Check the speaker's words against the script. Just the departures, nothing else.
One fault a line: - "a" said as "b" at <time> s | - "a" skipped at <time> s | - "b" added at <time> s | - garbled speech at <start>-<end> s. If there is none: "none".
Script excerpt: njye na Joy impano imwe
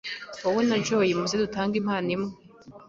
- "njye" said as "wowe" at 0.4 s
- "muze dutange" added at 1.2 s